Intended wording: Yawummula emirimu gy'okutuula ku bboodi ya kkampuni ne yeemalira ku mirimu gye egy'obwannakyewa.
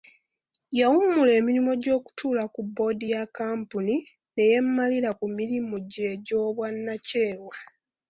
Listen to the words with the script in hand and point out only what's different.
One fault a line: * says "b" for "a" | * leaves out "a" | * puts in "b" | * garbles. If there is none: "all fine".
all fine